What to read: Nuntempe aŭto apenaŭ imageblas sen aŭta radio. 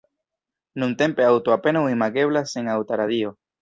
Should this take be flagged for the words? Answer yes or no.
no